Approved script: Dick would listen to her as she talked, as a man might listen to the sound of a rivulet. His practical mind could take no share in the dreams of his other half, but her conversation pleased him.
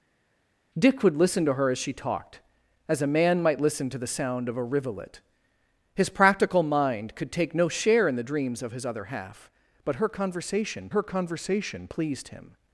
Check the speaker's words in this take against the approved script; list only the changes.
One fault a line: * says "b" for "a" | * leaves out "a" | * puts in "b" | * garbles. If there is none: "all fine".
* puts in "her conversation"